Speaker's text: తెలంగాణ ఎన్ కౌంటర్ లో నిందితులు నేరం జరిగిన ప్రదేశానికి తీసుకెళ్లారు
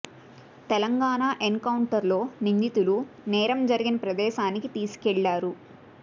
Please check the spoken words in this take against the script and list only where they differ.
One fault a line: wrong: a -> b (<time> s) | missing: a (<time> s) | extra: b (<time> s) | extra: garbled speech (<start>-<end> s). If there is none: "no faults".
no faults